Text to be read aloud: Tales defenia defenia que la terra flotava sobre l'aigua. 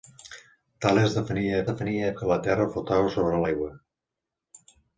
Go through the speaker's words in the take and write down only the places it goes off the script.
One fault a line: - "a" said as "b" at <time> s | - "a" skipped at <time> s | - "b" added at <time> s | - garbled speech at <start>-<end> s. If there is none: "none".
none